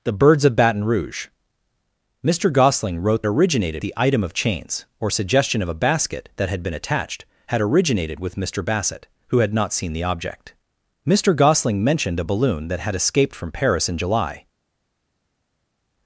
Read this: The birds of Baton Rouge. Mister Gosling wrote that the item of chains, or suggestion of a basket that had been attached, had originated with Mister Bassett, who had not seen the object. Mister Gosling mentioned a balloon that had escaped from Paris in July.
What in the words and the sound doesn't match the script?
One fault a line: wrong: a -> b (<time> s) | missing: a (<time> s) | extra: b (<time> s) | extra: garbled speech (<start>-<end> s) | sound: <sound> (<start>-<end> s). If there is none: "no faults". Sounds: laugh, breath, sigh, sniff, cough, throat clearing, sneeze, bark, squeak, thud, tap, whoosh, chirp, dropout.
wrong: that -> originated (3.3 s)